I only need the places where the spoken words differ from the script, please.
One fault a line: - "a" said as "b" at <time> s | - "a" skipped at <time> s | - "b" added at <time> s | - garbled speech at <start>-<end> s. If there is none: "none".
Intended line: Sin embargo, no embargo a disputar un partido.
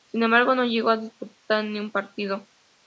- "embargo" said as "llegó" at 0.7 s
- "ni" added at 1.6 s